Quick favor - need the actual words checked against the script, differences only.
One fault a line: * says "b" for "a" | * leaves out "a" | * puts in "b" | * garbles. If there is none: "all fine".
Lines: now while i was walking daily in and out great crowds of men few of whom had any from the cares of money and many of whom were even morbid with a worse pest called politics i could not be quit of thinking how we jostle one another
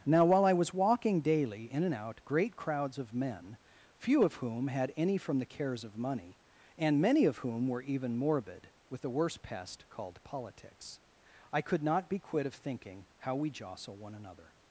all fine